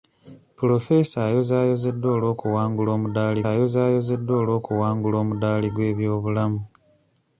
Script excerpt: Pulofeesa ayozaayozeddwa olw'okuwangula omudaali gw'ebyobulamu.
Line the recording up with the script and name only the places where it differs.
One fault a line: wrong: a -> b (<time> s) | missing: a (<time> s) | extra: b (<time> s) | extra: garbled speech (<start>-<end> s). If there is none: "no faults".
extra: ayozaayozeddwa olw'okuwangula omudaali (3.5 s)